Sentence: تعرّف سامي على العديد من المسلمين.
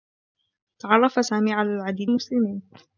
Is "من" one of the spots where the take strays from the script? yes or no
yes